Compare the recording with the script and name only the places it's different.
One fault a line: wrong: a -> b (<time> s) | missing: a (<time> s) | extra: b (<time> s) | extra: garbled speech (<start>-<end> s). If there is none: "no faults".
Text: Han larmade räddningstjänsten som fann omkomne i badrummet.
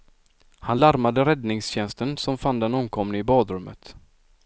extra: den (2.6 s)